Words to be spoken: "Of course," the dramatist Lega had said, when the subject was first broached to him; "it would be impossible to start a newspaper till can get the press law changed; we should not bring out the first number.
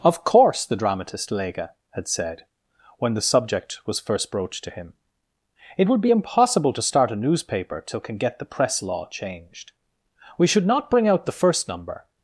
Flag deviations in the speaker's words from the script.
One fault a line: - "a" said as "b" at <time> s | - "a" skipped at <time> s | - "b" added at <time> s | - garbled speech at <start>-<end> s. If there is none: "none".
none